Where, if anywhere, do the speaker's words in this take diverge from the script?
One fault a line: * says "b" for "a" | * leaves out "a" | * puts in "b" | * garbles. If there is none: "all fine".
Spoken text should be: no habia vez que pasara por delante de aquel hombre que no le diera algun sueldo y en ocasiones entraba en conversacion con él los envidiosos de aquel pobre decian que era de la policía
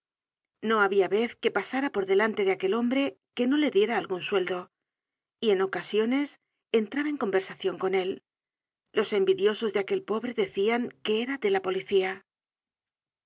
all fine